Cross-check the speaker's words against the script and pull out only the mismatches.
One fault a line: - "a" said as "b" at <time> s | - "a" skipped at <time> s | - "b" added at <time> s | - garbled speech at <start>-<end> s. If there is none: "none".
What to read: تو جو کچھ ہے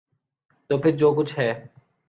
- "پھر" added at 0.8 s